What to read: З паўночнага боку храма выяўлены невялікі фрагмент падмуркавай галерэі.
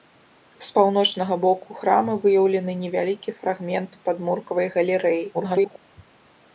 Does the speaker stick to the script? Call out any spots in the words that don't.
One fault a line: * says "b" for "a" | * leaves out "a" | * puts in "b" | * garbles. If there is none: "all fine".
* garbles